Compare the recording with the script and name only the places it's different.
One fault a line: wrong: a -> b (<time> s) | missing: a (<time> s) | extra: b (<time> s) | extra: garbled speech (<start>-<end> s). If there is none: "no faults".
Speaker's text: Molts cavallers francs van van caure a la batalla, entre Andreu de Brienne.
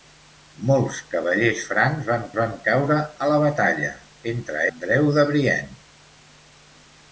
no faults